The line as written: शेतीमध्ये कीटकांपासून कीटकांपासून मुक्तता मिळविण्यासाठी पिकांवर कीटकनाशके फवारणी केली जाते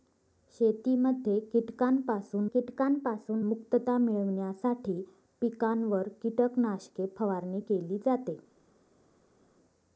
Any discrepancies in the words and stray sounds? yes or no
no